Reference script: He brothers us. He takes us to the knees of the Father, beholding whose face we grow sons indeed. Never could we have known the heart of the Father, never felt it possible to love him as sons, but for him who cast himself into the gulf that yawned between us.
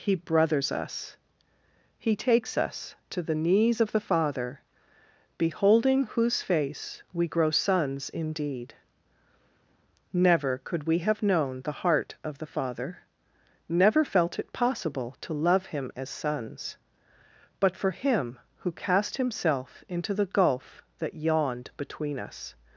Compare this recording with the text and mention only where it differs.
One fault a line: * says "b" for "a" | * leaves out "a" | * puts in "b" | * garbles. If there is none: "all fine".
all fine